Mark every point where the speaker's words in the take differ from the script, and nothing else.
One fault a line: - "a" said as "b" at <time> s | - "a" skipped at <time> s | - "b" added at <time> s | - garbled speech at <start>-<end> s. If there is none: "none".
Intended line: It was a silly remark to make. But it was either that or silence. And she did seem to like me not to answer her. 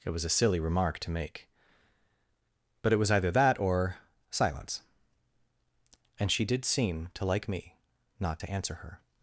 none